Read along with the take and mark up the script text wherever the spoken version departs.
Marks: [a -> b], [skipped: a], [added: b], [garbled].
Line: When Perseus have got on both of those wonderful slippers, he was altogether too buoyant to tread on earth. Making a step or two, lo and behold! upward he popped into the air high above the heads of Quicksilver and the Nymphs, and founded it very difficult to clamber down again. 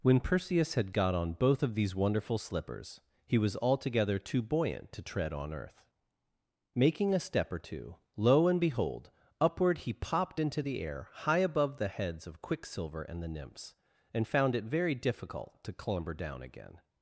When Perseus [have -> had] got on both of [those -> these] wonderful slippers, he was altogether too buoyant to tread on earth. Making a step or two, lo and behold! upward he popped into the air high above the heads of Quicksilver and the Nymphs, and [founded -> found] it very difficult to clamber down again.